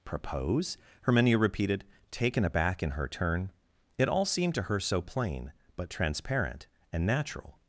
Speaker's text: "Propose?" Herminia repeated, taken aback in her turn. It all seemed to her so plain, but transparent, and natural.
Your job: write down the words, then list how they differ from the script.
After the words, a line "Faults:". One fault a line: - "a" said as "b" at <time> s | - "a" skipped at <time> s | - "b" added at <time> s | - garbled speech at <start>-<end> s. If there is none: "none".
"Propose?" Herminia repeated, taken aback in her turn. It all seemed to her so plain, but transparent, and natural.
Faults:
none